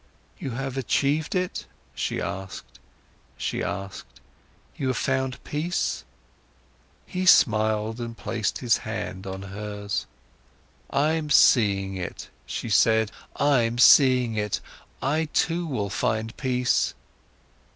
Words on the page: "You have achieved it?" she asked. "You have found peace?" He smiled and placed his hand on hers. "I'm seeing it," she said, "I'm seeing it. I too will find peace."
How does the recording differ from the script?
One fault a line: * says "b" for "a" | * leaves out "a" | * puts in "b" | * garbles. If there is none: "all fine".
* puts in "she asked"